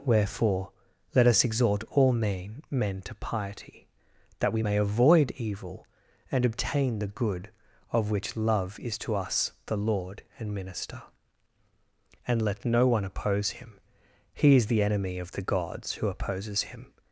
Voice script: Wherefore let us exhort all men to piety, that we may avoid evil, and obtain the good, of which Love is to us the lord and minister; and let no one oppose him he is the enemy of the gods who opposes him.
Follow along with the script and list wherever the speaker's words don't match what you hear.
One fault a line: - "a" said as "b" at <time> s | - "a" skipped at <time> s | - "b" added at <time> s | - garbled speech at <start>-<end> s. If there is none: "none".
- "men" added at 2.7 s